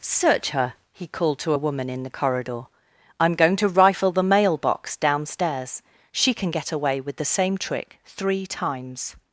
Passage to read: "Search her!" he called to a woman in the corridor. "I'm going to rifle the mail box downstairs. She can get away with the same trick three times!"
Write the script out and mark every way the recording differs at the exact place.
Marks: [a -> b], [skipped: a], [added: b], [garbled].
"Search her!" he called to a woman in the corridor. "I'm going to rifle the mail box downstairs. She can get away with the same trick three times!"